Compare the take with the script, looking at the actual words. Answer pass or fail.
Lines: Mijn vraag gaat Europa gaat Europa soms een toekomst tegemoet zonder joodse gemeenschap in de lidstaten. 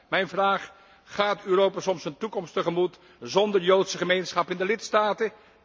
fail